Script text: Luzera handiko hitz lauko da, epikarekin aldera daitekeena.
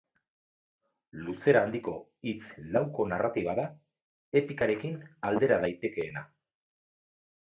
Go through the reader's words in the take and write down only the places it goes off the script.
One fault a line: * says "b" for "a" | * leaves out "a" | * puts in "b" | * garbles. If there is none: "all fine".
* puts in "narratiba"